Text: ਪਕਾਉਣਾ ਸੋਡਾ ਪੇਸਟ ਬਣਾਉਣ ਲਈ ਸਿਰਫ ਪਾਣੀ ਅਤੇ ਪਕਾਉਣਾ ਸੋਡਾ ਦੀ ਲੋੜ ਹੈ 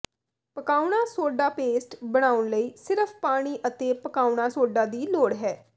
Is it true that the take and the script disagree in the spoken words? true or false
false